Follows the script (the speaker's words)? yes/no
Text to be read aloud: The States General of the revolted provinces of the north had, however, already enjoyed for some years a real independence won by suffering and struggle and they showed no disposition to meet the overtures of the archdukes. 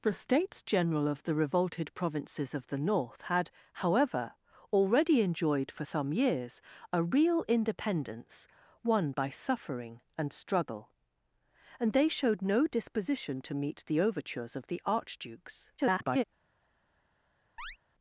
no